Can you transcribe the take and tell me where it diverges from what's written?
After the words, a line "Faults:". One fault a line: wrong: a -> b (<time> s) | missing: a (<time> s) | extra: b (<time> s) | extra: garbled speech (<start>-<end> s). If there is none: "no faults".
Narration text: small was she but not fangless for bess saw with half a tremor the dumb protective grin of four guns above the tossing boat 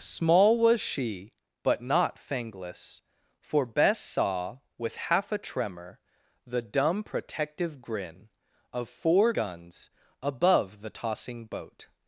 small was she but not fangless for bess saw with half a tremor the dumb protective grin of four guns above the tossing boat
Faults:
no faults